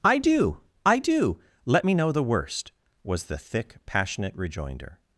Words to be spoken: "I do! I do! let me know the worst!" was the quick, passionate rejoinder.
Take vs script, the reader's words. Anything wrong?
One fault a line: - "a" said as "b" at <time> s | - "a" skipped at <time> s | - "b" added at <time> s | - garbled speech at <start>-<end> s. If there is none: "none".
- "quick" said as "thick" at 3.4 s